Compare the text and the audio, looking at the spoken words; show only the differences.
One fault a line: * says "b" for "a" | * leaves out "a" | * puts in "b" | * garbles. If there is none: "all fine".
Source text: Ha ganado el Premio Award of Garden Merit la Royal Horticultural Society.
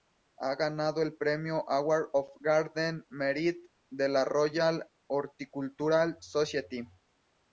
* puts in "de"